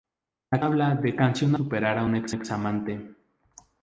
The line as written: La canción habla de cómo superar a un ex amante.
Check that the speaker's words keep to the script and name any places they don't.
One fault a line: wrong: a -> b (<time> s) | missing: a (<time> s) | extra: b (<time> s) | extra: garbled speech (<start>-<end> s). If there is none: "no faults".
missing: canción (0.6 s)
wrong: cómo -> canción (1.1 s)
extra: ex (2.3 s)